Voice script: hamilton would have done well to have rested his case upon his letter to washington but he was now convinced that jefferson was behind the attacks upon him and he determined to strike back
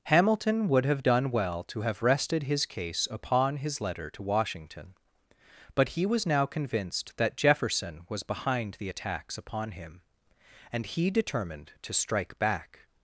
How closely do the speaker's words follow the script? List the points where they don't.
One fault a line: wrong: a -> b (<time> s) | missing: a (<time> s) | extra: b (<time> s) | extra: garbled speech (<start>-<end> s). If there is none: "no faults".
no faults